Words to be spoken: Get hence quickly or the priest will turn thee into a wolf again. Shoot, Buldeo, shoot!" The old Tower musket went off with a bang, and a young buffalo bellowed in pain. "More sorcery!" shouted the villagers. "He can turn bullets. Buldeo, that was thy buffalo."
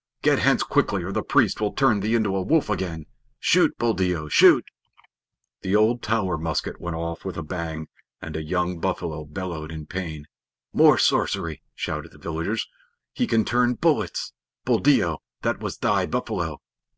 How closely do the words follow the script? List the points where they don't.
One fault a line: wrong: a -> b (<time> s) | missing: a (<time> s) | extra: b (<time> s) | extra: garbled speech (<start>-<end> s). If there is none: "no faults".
no faults